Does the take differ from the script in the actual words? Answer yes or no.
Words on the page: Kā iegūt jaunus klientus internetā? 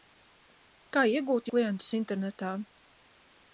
yes